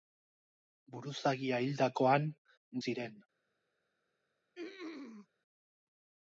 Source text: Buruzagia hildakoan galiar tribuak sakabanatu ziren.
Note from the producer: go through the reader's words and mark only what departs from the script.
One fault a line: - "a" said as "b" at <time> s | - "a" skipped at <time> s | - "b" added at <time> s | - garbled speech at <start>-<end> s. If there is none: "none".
- "galiar tribuak sakabanatu" skipped at 2.3 s